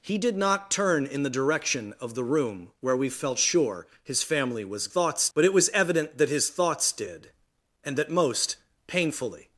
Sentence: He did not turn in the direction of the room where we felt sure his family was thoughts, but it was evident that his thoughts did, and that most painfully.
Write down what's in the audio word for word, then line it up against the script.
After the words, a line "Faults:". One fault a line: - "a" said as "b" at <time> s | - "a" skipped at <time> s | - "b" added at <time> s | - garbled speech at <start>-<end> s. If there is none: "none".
He did not turn in the direction of the room where we felt sure his family was thoughts, but it was evident that his thoughts did, and that most painfully.
Faults:
none